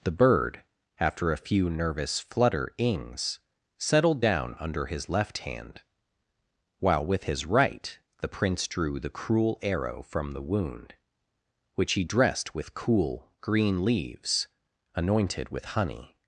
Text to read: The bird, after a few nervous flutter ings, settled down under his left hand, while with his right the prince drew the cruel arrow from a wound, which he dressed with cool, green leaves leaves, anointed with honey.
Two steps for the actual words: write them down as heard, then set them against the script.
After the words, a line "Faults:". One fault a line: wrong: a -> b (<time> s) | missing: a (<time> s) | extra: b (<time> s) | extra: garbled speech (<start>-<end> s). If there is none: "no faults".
The bird, after a few nervous flutter ings, settled down under his left hand, while with his right the prince drew the cruel arrow from the wound, which he dressed with cool, green leaves, anointed with honey.
Faults:
wrong: a -> the (10.3 s)
missing: leaves (14.5 s)